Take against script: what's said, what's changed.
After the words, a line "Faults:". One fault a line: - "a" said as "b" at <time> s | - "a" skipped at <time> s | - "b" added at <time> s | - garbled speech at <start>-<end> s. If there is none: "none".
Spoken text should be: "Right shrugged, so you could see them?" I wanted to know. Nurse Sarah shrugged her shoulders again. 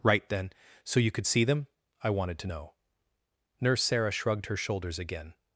"Right then, so you could see them?" I wanted to know. Nurse Sarah shrugged her shoulders again.
Faults:
- "shrugged" said as "then" at 0.3 s